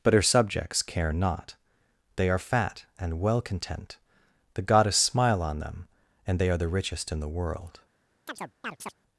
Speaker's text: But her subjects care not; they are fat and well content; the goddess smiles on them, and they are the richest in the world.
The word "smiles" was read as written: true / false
false